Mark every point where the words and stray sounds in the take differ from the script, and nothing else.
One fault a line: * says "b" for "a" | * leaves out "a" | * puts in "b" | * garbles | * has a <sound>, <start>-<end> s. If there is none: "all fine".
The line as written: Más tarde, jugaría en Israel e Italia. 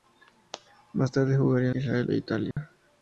* has a dropout, 2.5-2.6 s